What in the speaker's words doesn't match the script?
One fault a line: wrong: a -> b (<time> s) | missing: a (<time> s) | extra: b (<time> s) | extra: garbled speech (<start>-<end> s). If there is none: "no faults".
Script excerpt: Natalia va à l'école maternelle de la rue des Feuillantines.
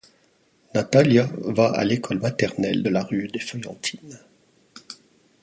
no faults